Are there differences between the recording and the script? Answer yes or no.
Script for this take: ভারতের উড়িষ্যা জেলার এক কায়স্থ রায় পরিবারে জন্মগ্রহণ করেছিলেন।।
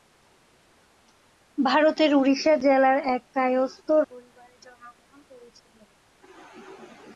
yes